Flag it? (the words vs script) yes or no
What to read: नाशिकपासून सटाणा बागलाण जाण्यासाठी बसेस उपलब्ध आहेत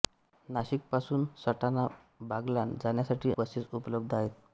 no